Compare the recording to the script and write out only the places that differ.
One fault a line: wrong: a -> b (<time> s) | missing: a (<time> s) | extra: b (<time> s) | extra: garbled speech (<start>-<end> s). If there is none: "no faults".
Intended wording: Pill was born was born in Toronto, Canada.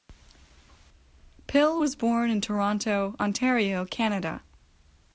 missing: was born (2.3 s)
extra: Ontario (3.2 s)